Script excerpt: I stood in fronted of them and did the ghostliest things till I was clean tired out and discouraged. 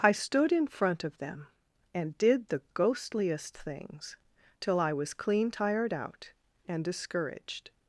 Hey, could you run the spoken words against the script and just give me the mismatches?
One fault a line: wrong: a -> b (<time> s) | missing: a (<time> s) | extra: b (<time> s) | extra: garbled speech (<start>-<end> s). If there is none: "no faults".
wrong: fronted -> front (0.7 s)